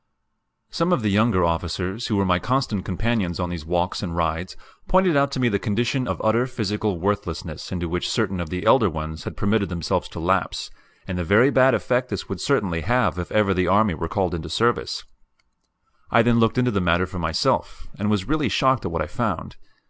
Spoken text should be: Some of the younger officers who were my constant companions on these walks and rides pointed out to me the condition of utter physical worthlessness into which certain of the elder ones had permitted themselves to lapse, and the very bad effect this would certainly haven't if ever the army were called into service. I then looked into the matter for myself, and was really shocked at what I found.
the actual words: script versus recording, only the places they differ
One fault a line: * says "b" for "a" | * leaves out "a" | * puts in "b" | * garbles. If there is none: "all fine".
* says "have" for "haven't"